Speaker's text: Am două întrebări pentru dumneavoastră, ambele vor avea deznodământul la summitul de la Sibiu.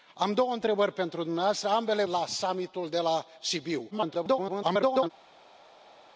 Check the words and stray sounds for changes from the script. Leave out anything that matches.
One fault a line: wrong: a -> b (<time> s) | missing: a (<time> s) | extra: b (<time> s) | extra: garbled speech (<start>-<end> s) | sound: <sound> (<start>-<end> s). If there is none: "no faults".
missing: vor avea deznodământul (2.0 s)
extra: garbled speech (3.9-5.1 s)